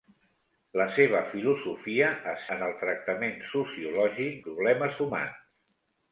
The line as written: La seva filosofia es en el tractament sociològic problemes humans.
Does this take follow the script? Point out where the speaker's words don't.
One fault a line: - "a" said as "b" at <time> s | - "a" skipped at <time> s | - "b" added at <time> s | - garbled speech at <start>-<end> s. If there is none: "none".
none